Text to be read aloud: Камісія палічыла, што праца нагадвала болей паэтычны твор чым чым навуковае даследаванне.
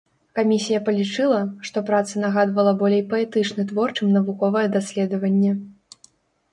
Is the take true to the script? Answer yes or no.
no